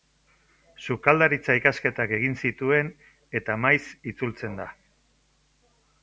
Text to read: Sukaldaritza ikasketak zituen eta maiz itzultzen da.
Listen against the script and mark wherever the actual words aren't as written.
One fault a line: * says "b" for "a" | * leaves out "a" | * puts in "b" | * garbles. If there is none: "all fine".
* puts in "egin"